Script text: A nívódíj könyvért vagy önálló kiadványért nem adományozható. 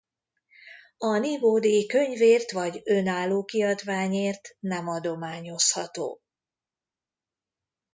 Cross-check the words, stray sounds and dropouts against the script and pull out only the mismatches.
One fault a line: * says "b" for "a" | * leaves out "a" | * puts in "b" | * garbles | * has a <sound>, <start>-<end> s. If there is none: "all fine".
all fine